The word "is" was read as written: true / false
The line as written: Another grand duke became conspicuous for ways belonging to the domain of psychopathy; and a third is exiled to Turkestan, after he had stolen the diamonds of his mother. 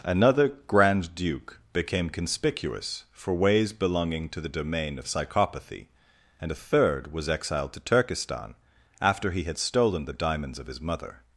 false